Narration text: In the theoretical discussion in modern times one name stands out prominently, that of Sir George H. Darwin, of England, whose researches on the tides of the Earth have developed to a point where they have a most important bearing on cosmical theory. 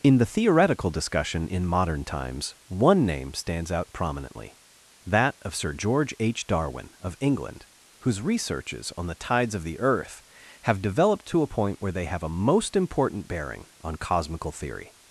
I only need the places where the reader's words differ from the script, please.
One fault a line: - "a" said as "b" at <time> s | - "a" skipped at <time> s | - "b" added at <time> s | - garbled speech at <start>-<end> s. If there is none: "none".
none